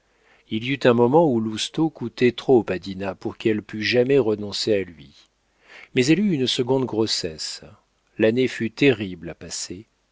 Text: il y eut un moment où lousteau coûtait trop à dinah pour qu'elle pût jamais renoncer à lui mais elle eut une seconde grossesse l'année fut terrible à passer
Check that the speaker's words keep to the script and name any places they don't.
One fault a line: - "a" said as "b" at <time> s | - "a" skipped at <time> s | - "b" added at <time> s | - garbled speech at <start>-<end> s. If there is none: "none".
none